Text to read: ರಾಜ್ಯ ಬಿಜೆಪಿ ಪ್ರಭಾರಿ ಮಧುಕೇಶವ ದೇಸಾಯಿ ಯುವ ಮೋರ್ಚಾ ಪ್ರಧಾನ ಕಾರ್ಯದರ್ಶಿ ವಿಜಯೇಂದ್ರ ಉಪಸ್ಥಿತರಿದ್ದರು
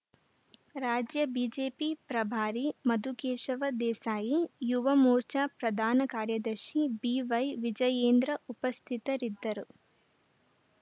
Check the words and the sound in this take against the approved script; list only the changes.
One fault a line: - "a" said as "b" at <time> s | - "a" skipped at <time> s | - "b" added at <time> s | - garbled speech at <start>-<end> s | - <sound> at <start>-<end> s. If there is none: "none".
- "ಬಿವೈ" added at 7.0 s